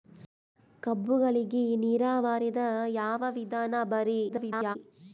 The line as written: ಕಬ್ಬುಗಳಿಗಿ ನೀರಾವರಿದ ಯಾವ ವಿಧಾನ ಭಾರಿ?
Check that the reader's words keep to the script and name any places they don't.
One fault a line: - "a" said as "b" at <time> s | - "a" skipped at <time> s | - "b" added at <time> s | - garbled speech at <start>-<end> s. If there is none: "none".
- garbled speech at 4.3-4.8 s